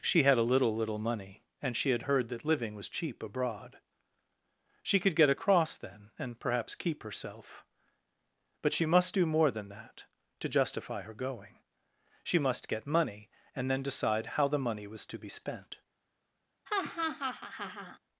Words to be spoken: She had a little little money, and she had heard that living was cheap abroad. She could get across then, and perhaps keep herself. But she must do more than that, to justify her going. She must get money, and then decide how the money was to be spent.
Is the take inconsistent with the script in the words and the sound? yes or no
yes